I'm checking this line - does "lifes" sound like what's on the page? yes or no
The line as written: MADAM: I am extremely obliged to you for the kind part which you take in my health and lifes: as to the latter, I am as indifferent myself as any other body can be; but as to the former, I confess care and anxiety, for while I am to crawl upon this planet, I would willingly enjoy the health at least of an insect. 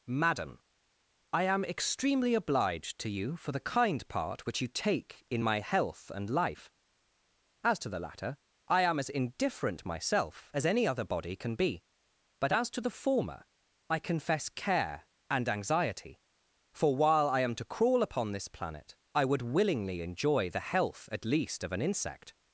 no